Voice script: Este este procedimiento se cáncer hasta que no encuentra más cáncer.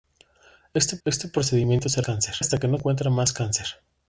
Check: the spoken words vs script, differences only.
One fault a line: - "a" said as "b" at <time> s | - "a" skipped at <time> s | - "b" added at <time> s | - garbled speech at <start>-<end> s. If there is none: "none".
none